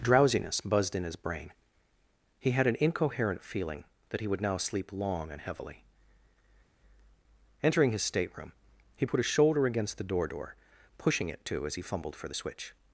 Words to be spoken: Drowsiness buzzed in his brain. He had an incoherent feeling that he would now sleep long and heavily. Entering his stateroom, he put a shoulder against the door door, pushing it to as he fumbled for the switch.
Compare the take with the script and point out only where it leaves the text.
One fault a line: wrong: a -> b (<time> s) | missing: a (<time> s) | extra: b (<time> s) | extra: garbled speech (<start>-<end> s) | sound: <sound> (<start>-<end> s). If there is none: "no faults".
no faults